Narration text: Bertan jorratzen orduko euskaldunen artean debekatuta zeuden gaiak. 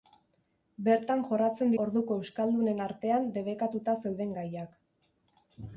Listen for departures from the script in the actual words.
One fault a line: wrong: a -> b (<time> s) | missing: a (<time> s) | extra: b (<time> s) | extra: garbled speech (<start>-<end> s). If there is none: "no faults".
no faults